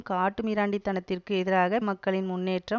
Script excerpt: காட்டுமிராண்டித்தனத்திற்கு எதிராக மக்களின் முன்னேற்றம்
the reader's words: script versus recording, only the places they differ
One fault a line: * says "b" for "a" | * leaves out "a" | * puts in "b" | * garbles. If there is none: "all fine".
all fine